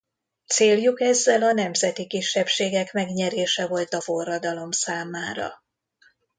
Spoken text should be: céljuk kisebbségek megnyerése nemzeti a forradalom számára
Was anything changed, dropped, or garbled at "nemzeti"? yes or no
yes